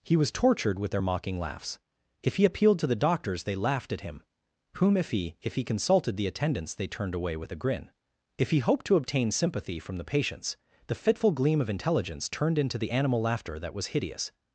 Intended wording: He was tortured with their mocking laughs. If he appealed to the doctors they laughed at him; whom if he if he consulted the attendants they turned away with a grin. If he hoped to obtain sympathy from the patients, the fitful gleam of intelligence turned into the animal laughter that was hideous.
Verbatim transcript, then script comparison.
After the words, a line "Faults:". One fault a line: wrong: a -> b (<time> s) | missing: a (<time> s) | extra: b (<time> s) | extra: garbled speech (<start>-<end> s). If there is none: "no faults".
He was tortured with their mocking laughs. If he appealed to the doctors they laughed at him; whom if he if he consulted the attendants they turned away with a grin. If he hoped to obtain sympathy from the patients, the fitful gleam of intelligence turned into the animal laughter that was hideous.
Faults:
no faults